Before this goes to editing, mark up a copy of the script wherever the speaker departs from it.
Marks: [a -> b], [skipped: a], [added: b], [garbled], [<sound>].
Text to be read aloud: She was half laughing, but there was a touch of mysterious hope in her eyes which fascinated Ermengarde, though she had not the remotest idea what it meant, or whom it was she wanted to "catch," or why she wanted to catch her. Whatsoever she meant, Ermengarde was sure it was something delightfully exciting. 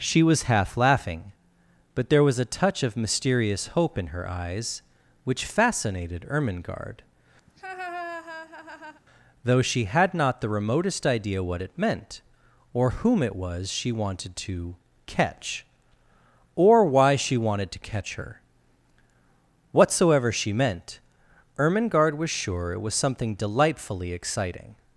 She was half laughing, but there was a touch of mysterious hope in her eyes which fascinated Ermengarde, [laugh] though she had not the remotest idea what it meant, or whom it was she wanted to "catch," or why she wanted to catch her. Whatsoever she meant, Ermengarde was sure it was something delightfully exciting.